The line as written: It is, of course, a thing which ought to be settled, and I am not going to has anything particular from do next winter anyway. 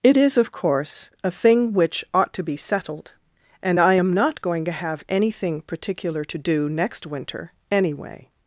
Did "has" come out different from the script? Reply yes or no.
yes